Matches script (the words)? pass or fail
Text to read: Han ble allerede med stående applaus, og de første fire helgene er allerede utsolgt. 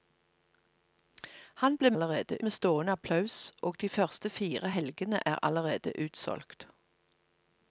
pass